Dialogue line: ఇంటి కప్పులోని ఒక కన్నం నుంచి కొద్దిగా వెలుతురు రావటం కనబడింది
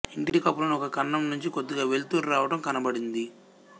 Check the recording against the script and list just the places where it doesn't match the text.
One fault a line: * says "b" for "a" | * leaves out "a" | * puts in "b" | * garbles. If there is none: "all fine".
all fine